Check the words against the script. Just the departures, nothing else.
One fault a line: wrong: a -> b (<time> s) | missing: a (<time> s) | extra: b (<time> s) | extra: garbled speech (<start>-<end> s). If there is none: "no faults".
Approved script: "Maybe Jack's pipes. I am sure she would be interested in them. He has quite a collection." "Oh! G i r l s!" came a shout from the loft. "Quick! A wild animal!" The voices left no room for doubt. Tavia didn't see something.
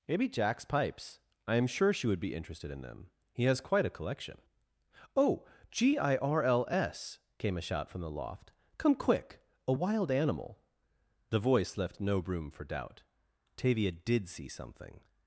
extra: Come (8.8 s)
wrong: voices -> voice (11.4 s)
wrong: didn't -> did (13.9 s)